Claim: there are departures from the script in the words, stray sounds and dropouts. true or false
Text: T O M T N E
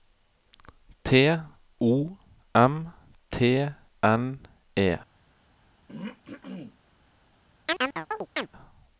true